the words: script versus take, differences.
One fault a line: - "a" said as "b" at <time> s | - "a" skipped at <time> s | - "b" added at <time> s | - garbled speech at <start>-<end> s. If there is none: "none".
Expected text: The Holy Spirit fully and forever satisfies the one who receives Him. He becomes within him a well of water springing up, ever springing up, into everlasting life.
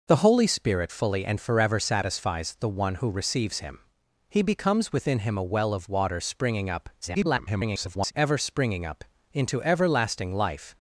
- garbled speech at 7.0-8.1 s